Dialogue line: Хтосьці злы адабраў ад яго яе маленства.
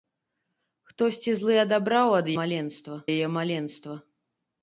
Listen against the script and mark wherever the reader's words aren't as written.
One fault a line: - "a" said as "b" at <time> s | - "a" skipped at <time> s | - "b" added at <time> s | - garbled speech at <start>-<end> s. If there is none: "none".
- "яго" said as "маленства" at 2.4 s